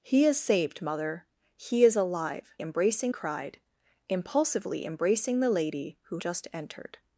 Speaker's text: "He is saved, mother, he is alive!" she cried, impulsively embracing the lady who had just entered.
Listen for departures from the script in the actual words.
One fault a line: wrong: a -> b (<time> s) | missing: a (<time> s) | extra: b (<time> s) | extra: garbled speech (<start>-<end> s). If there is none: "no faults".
wrong: she -> embracing (2.6 s)
missing: had (6.2 s)